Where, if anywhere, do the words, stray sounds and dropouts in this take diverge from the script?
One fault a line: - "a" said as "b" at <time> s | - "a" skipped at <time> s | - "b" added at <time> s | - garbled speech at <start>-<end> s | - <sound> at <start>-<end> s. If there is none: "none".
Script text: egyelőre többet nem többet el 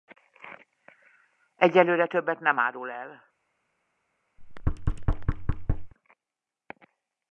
- "többet" said as "árul" at 2.6 s
- thud at 4.4-5.9 s